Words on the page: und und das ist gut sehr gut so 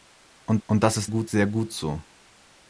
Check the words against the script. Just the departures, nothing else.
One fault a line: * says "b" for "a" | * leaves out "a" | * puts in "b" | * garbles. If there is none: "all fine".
all fine